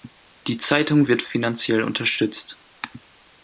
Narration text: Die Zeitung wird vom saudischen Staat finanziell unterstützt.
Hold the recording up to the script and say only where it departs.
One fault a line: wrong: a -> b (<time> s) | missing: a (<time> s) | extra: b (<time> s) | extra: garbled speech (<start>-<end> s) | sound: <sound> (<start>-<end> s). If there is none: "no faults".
missing: vom saudischen Staat (1.2 s)